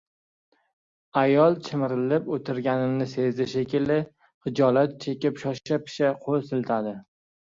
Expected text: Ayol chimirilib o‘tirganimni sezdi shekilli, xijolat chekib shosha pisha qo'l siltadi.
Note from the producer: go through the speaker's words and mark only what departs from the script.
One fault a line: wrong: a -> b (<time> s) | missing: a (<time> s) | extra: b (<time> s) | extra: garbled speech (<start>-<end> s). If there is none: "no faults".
no faults